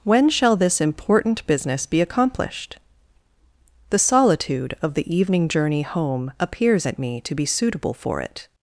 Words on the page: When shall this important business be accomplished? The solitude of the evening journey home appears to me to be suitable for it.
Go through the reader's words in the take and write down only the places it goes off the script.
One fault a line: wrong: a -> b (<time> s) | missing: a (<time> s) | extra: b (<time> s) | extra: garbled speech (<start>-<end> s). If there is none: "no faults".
wrong: to -> at (6.8 s)